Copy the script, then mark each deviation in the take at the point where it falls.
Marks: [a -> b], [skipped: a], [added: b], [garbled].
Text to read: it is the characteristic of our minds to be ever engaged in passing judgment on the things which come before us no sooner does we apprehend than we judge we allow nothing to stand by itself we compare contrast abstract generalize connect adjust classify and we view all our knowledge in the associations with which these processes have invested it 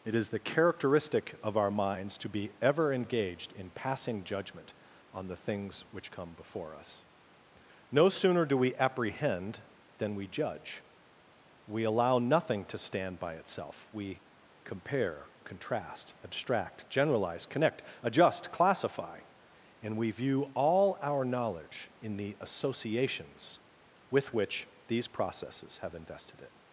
it is the characteristic of our minds to be ever engaged in passing judgment on the things which come before us no sooner [does -> do] we apprehend than we judge we allow nothing to stand by itself we compare contrast abstract generalize connect adjust classify and we view all our knowledge in the associations with which these processes have invested it